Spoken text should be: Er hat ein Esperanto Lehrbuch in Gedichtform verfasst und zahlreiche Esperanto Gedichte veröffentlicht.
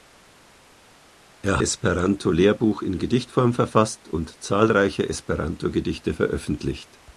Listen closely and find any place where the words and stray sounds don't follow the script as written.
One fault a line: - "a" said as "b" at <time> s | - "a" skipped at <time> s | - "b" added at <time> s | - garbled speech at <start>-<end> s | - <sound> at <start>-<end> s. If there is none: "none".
- "hat ein" skipped at 1.6 s